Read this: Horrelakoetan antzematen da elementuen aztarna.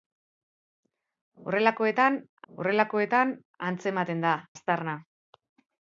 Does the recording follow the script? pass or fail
fail